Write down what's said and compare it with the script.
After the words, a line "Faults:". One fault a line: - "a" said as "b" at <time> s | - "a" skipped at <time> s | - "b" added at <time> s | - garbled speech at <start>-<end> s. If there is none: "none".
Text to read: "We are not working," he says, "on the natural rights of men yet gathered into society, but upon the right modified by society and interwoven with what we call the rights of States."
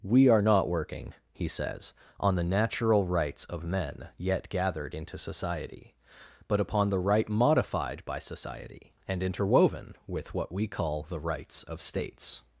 "We are not working," he says, "on the natural rights of men yet gathered into society, but upon the right modified by society and interwoven with what we call the rights of States."
Faults:
none